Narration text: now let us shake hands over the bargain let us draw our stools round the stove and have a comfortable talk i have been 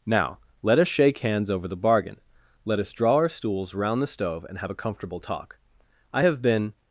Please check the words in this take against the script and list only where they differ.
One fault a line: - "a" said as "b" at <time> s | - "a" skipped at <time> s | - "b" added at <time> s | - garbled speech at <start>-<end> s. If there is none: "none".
none